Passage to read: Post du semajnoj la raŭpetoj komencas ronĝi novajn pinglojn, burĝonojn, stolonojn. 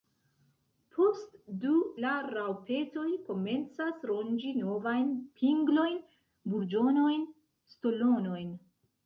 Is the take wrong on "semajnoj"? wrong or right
wrong